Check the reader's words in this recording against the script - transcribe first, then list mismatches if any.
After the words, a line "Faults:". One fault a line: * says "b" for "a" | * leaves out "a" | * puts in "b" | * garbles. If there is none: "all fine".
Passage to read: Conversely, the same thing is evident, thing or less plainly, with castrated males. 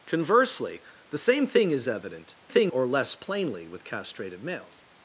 Conversely, the same thing is evident, thing or less plainly, with castrated males.
Faults:
all fine